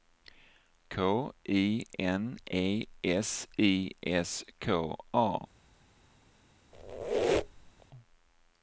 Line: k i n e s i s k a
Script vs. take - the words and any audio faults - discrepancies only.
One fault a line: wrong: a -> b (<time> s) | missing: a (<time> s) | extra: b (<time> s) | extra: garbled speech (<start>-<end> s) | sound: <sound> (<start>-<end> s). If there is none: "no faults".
sound: squeak (6.7-7.9 s)